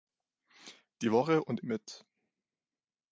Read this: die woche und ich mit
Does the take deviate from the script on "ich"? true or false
true